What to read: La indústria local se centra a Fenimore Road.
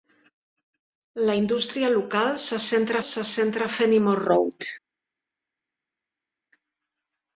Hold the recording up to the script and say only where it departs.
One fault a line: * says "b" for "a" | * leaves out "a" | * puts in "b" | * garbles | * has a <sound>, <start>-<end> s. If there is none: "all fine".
* puts in "se centra"